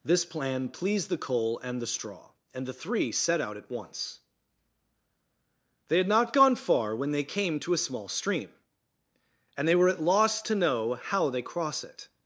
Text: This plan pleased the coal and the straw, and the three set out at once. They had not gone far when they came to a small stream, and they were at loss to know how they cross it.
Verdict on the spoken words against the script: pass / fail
pass